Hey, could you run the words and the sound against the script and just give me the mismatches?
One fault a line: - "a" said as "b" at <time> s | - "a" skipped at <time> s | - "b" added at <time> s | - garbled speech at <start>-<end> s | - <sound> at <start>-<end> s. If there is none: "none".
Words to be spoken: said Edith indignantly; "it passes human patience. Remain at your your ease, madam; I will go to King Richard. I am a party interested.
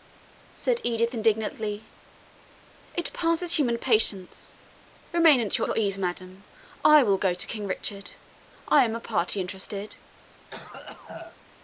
- cough at 10.5-11.4 s